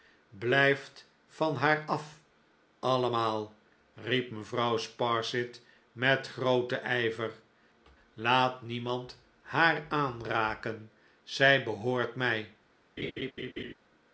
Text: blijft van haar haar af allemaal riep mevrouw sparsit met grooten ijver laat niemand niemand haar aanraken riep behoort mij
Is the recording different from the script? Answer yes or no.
yes